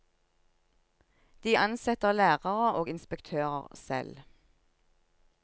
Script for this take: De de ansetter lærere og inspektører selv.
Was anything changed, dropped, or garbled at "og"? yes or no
no